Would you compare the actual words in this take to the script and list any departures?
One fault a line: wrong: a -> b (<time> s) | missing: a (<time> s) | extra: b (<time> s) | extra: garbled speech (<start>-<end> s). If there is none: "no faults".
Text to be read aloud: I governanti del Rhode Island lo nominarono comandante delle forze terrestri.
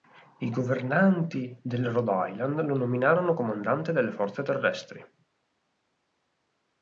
no faults